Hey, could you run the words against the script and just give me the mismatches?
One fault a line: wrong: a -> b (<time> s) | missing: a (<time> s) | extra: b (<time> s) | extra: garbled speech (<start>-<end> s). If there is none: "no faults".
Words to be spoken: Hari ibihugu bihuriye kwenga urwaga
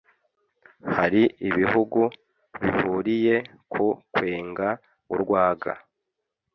extra: ku (3.7 s)